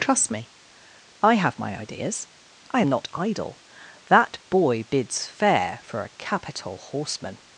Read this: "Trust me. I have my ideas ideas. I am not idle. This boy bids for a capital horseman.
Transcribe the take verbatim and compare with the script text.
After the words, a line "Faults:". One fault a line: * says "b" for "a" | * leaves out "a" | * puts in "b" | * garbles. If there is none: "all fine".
"Trust me. I have my ideas. I am not idle. That boy bids fair for a capital horseman.
Faults:
* leaves out "ideas"
* says "That" for "This"
* puts in "fair"